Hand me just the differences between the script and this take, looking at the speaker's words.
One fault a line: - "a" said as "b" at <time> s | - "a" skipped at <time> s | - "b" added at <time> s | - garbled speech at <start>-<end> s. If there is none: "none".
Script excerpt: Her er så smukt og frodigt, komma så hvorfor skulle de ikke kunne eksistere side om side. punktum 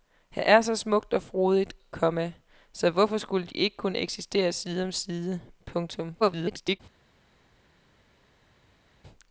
- garbled speech at 6.2-6.8 s